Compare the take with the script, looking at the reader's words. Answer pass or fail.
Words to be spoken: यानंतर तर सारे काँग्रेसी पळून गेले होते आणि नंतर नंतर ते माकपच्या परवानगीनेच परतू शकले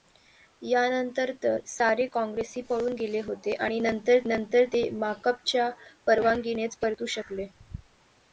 pass